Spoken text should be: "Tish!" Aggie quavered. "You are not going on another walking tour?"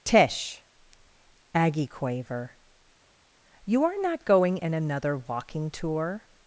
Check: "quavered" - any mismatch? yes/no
yes